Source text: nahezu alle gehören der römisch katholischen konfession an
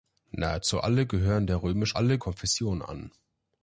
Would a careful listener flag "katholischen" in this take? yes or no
yes